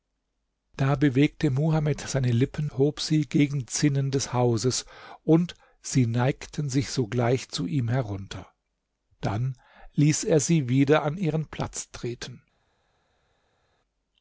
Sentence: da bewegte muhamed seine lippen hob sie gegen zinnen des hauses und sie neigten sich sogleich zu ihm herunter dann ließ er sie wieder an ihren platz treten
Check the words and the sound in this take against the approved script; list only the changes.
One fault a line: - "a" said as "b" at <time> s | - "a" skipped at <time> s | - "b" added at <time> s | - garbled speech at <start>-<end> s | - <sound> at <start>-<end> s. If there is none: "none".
none